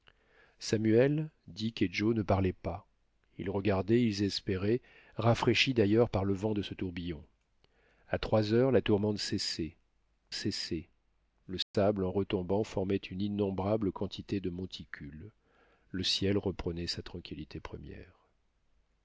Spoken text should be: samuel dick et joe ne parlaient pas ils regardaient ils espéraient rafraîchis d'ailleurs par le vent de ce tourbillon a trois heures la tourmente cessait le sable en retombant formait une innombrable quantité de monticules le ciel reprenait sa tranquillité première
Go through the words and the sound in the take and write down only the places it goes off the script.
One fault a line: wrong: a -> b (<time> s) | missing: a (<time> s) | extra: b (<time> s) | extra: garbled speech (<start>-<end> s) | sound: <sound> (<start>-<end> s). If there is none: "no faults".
extra: cessait (10.3 s)
sound: dropout (11.6-11.7 s)